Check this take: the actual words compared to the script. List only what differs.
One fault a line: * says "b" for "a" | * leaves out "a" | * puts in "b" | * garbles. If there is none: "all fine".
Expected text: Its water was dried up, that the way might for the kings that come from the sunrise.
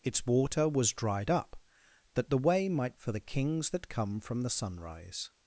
all fine